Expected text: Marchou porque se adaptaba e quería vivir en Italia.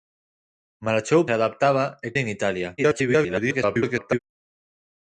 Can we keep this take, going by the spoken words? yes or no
no